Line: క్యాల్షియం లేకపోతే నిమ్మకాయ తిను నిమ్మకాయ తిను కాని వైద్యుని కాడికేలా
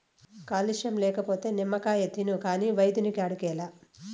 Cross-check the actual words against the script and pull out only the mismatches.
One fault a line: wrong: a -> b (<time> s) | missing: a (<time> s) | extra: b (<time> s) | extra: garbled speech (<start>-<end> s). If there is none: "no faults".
missing: నిమ్మకాయ తిను (2.4 s)